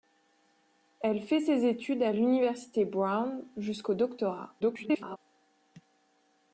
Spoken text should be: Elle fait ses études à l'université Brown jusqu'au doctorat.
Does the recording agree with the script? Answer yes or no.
no